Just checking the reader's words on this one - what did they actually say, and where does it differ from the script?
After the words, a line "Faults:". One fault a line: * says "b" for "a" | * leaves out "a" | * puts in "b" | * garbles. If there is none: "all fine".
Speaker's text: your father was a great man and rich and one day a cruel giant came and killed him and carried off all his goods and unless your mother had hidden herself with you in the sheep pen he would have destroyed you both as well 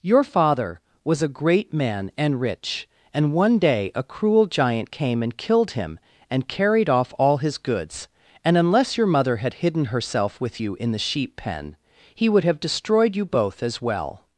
your father was a great man and rich and one day a cruel giant came and killed him and carried off all his goods and unless your mother had hidden herself with you in the sheep pen he would have destroyed you both as well
Faults:
all fine